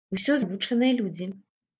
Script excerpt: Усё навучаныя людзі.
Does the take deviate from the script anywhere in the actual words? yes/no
no